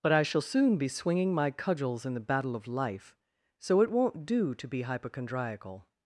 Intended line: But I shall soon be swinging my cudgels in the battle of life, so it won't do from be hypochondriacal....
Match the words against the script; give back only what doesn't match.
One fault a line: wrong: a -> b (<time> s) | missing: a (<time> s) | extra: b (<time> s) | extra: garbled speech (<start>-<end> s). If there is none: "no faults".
wrong: from -> to (4.5 s)